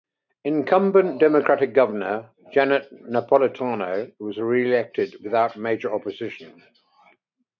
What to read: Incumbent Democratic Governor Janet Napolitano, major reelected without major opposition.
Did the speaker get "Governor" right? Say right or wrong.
right